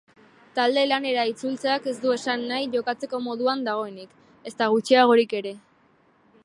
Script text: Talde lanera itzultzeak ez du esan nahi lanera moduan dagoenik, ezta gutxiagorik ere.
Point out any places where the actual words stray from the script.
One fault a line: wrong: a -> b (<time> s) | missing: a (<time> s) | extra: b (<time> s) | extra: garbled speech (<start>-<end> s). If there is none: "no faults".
wrong: lanera -> jokatzeko (2.8 s)